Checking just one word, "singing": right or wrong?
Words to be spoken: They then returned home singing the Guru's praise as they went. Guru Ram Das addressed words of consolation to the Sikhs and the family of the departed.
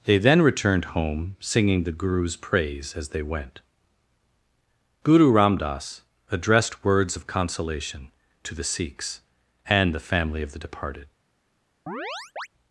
right